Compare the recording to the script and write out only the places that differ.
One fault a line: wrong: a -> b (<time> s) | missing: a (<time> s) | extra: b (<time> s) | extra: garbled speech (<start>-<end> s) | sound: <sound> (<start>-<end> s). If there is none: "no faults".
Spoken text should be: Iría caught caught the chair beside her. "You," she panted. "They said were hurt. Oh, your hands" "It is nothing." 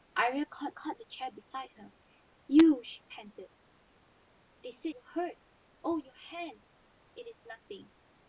no faults